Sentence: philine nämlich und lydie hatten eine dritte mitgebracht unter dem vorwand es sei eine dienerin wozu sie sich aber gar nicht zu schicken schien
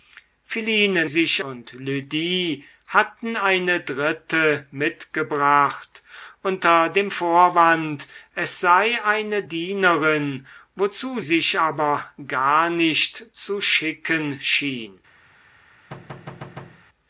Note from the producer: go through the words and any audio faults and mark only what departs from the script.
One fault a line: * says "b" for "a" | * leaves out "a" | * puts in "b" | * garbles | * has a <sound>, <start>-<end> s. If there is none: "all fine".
* says "sich" for "nämlich"
* leaves out "sie"
* has a thud, 15.9-16.9 s